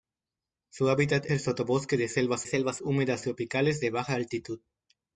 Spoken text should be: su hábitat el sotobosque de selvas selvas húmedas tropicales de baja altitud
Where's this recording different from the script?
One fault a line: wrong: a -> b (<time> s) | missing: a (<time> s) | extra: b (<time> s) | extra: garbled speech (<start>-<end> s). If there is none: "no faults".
no faults